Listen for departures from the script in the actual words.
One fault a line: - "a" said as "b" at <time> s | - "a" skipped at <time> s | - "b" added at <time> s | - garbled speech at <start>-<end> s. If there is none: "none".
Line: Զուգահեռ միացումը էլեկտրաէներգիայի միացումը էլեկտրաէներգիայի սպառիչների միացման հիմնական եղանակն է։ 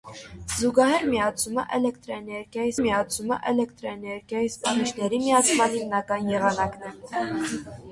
none